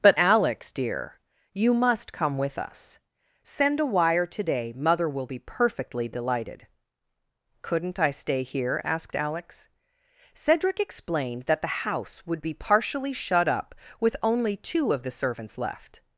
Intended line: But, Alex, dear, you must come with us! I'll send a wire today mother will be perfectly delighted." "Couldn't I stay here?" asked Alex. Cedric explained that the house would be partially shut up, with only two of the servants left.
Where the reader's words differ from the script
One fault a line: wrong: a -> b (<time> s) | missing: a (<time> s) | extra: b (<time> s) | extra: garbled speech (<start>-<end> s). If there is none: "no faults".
missing: I'll (3.0 s)